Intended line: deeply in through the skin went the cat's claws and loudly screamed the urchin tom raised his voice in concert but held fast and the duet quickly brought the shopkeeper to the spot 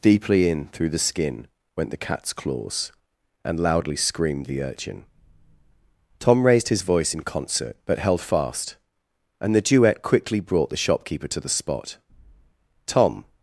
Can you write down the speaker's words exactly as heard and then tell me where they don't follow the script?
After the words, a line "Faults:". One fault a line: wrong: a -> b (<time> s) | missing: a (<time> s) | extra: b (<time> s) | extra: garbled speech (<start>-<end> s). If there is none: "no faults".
deeply in through the skin went the cat's claws and loudly screamed the urchin tom raised his voice in concert but held fast and the duet quickly brought the shopkeeper to the spot tom
Faults:
extra: tom (12.9 s)